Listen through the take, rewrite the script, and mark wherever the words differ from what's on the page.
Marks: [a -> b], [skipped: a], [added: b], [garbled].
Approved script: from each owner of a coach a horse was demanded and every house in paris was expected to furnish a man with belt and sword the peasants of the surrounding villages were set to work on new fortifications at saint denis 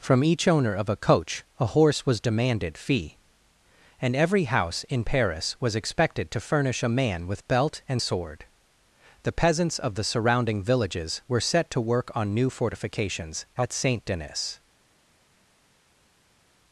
from each owner of a coach a horse was demanded [added: fee] and every house in paris was expected to furnish a man with belt and sword the peasants of the surrounding villages were set to work on new fortifications at saint denis